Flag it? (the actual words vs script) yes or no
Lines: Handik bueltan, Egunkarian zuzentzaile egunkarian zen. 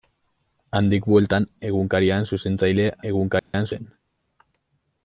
no